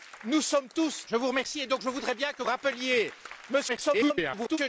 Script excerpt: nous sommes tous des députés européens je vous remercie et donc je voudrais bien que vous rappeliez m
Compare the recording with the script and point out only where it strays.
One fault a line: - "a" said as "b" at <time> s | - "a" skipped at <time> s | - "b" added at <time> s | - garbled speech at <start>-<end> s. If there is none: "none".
- "des députés européens" skipped at 1.1 s
- "vous" skipped at 2.4 s
- garbled speech at 3.7-4.6 s